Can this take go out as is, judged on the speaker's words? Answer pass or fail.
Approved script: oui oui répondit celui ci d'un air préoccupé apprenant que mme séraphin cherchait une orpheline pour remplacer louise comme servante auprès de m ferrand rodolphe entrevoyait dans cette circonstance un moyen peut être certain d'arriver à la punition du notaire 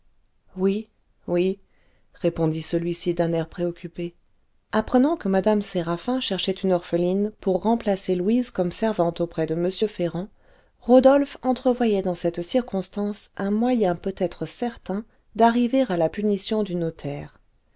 pass